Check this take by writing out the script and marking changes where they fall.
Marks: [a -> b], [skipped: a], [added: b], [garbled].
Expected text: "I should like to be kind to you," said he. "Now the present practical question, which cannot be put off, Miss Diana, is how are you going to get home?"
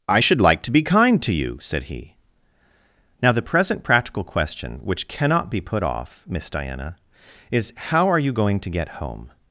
"I should like to be kind to you," said he. "Now the present practical question, which cannot be put off, Miss Diana, is how are you going to get home?"